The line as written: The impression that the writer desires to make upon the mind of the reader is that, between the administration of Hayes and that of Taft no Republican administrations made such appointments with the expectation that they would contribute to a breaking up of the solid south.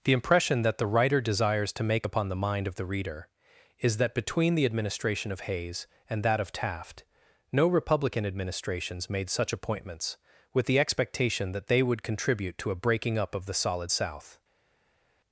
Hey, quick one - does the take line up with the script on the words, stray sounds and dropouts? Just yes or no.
yes